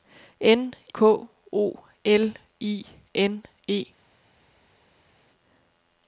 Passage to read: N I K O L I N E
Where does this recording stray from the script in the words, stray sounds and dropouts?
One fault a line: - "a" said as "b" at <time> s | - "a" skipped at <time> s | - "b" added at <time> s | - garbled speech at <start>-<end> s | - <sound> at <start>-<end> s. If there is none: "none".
- "I" skipped at 0.7 s